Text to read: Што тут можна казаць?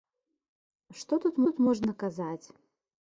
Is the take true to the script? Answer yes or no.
no